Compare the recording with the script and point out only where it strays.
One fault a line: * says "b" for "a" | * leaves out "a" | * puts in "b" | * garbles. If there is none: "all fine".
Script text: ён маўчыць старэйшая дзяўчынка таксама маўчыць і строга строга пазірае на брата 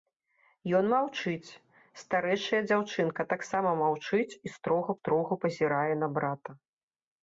all fine